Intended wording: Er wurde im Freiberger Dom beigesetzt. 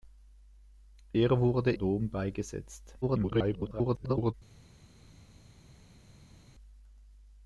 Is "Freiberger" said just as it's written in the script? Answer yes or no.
no